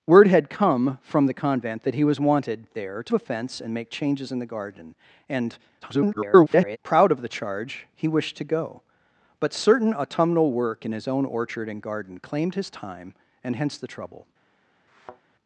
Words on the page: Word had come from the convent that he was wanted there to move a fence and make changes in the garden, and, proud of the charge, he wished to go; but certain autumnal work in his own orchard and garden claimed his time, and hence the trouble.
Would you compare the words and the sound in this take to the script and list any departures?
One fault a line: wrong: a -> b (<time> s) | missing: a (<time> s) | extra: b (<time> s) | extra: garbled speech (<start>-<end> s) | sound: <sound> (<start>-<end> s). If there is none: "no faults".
missing: move (3.1 s)
extra: garbled speech (5.8-6.8 s)
sound: thud (14.9-15.2 s)